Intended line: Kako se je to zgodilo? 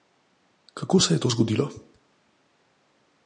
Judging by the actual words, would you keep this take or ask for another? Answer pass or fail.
pass